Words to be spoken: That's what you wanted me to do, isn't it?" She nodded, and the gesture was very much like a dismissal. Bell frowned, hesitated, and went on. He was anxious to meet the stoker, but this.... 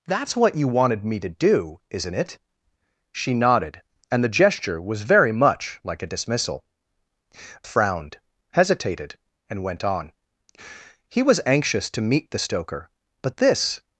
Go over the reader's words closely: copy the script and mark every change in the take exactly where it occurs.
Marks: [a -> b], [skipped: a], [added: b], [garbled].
That's what you wanted me to do, isn't it?" She nodded, and the gesture was very much like a dismissal. [skipped: Bell] frowned, hesitated, and went on. He was anxious to meet the stoker, but this....